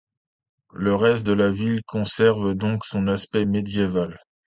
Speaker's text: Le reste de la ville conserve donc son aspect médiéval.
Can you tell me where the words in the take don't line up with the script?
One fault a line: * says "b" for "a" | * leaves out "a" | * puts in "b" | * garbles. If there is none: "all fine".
all fine